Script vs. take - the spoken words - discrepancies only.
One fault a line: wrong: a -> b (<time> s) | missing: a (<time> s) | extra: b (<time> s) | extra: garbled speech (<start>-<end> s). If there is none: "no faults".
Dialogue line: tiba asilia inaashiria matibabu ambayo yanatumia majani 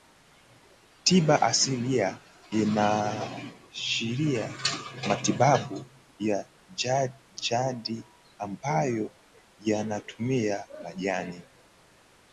extra: ya jadi (6.2 s)